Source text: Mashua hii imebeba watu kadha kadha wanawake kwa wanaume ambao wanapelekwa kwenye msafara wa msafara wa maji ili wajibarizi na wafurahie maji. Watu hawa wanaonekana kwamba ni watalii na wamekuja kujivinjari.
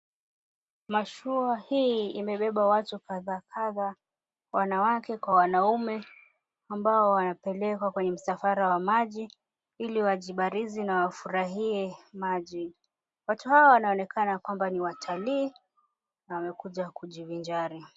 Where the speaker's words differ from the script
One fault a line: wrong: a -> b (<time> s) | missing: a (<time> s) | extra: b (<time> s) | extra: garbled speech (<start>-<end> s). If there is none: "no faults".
missing: msafara wa (8.8 s)